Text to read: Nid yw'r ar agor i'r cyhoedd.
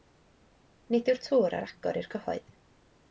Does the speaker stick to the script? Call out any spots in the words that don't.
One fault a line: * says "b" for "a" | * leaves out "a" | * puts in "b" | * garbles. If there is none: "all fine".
* puts in "tŵr"